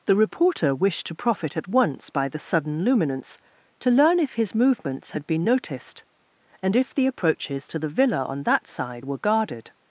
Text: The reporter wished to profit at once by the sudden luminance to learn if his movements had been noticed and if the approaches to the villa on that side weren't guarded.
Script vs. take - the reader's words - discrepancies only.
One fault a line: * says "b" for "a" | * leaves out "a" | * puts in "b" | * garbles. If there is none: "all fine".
* says "were" for "weren't"